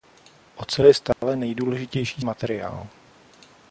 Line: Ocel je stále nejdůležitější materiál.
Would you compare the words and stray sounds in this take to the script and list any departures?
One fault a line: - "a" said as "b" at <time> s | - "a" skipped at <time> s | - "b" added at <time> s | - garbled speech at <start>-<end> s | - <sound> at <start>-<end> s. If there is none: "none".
- dropout at 1.1-1.2 s